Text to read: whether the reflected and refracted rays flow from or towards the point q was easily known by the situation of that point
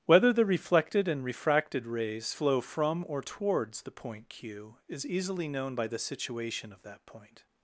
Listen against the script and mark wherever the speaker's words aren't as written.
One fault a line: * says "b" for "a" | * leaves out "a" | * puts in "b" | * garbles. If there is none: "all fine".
* says "is" for "was"